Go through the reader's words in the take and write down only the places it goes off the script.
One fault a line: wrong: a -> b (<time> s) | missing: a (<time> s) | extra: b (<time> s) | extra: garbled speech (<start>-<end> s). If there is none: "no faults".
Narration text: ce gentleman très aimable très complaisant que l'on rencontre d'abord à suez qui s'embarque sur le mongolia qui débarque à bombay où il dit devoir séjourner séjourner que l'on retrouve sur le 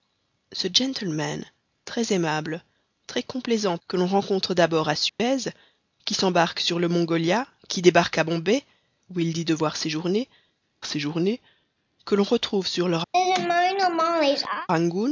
no faults